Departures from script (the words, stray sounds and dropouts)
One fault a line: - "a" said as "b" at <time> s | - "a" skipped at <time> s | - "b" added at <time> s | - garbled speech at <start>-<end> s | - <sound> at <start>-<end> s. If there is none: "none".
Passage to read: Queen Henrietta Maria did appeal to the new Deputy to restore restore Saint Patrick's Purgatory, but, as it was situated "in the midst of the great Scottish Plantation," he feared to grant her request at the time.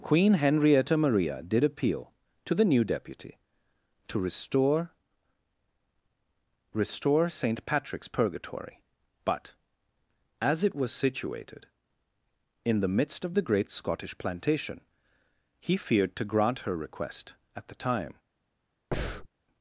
- breath at 18.9-19.3 s